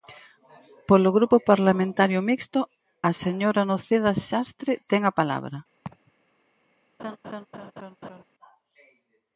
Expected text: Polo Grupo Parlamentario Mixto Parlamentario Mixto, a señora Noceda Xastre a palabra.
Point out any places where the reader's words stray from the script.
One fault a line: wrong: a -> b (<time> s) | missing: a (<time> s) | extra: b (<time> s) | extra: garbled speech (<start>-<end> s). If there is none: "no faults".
missing: Parlamentario Mixto (2.6 s)
extra: ten (4.9 s)